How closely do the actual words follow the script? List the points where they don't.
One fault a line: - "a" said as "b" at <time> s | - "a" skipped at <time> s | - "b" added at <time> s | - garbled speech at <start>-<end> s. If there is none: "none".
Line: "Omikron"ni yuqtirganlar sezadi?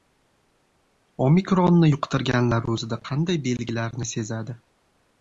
- "o‘zida qanday belgilarni" added at 2.8 s